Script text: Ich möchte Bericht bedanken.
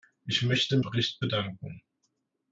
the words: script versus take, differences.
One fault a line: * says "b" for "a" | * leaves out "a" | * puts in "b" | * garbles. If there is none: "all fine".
all fine